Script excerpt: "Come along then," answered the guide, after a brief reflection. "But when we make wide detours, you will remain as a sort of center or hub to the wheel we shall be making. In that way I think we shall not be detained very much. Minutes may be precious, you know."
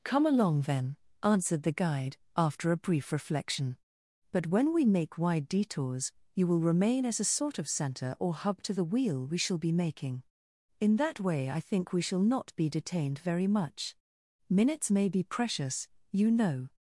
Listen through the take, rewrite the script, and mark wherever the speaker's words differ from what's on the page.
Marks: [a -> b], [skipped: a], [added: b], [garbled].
"Come along then," answered the guide, after a brief reflection. "But when we make wide detours, you will remain as a sort of center or hub to the wheel we shall be making. In that way I think we shall not be detained very much. Minutes may be precious, you know."